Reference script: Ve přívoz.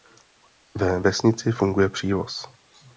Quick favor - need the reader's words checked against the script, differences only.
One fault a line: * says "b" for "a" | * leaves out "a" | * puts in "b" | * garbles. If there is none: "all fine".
* puts in "vesnici funguje"